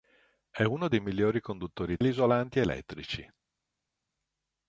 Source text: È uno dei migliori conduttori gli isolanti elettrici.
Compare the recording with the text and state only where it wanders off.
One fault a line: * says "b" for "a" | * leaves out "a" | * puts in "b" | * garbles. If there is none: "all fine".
all fine